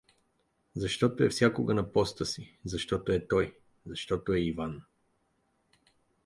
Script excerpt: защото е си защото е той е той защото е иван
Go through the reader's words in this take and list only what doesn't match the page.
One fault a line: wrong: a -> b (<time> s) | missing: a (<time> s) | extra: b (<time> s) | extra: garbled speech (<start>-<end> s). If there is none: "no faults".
extra: всякога на поста (1.3 s)
missing: е той (3.6 s)